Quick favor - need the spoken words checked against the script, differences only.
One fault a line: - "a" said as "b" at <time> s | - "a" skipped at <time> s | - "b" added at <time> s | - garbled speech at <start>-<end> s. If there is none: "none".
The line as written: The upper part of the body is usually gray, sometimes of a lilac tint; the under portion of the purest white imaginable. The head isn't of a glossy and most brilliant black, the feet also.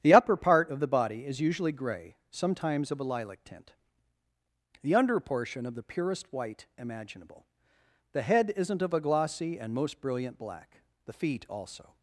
none